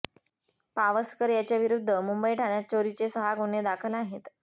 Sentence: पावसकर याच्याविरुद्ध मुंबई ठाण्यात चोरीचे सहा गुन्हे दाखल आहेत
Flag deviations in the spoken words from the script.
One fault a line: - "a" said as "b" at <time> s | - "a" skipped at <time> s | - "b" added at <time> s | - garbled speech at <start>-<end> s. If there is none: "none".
none